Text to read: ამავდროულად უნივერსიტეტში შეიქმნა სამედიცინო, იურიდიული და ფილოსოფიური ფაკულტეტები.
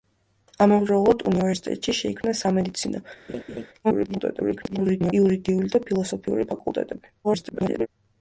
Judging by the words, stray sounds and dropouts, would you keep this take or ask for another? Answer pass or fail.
fail